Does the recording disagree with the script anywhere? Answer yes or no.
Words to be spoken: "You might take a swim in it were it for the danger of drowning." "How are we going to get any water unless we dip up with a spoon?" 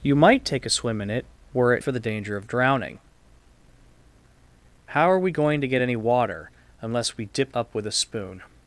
no